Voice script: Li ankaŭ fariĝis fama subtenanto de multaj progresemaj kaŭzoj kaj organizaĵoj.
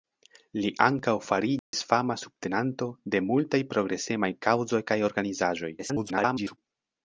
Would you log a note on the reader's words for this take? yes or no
yes